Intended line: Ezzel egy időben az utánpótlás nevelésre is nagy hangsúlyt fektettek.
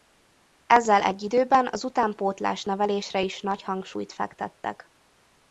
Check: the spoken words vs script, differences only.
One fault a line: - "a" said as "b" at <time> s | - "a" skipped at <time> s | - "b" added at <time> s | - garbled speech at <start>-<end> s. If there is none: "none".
none